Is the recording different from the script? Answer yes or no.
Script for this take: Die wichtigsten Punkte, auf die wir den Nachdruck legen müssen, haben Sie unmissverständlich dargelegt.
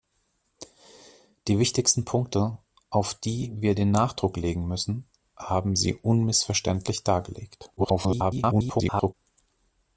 yes